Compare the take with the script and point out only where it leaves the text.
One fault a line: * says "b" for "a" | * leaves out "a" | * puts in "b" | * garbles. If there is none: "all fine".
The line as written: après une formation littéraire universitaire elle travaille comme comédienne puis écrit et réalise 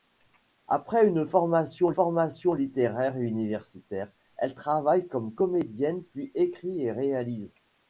* puts in "formation"